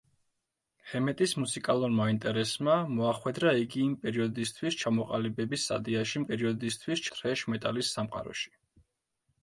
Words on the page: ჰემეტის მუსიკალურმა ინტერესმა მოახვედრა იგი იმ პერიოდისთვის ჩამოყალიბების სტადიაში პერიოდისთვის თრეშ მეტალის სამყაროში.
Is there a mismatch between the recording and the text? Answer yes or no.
no